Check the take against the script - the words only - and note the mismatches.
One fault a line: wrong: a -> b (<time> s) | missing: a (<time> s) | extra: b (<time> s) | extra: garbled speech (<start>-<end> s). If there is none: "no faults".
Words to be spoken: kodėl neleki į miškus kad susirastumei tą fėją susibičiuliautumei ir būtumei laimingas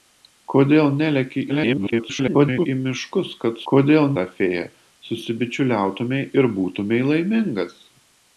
extra: garbled speech (1.5-2.7 s)
wrong: susirastumei -> kodėl (3.7 s)